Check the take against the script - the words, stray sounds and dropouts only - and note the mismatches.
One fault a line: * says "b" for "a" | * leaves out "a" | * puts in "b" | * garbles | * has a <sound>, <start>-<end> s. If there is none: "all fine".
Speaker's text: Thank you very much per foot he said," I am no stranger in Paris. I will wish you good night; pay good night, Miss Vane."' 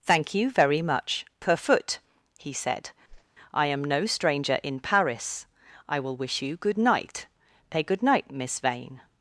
* has a whoosh, 3.1-3.3 s